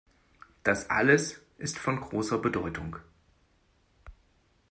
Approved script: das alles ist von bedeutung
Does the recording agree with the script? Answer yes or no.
no